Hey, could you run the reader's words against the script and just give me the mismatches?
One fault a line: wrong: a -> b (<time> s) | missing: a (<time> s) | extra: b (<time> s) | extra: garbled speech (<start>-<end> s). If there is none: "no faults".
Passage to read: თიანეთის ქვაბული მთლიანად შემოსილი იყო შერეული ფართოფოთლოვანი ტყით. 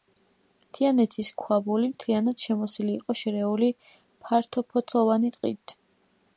no faults